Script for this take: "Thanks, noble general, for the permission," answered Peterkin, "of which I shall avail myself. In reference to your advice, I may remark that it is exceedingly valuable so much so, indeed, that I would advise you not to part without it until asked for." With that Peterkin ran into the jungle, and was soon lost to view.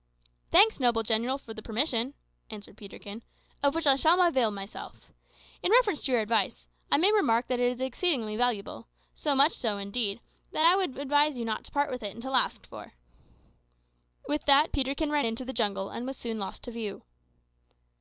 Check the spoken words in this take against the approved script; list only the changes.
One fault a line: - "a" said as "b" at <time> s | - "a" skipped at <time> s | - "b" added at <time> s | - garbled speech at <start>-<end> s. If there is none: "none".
- "without" said as "with" at 11.9 s